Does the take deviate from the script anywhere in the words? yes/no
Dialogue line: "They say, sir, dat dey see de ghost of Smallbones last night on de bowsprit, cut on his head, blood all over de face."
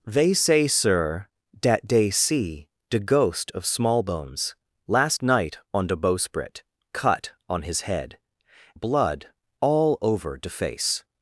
no